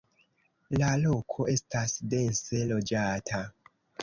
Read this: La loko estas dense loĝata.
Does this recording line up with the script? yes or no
yes